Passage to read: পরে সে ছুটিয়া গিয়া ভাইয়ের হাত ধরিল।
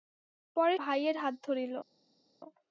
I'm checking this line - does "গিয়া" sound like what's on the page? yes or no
no